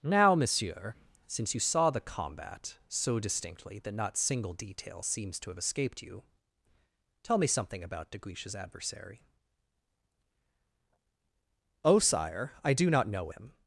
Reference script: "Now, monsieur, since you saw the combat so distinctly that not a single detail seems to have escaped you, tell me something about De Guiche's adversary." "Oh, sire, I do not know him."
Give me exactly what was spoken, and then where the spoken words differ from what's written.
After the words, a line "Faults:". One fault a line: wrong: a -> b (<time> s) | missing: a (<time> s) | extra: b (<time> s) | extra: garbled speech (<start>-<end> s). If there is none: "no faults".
"Now, monsieur, since you saw the combat so distinctly that not single detail seems to have escaped you, tell me something about De Guiche's adversary." "Oh, sire, I do not know him."
Faults:
missing: a (4.2 s)